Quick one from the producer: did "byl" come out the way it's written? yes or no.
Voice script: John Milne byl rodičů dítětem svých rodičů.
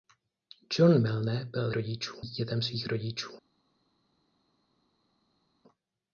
yes